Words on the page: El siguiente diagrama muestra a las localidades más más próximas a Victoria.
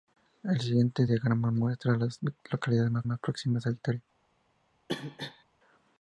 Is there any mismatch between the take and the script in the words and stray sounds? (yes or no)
yes